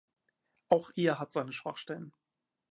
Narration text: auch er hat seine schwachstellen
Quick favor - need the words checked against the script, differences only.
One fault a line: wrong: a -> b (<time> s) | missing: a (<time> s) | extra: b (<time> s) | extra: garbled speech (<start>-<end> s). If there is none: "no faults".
no faults